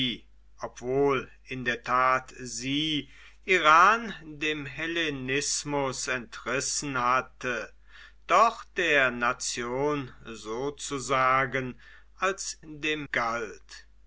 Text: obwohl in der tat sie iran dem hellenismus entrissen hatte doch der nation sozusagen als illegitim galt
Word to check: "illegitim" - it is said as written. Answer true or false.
false